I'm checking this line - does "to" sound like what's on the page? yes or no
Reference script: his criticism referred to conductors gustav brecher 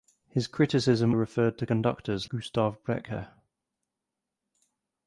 yes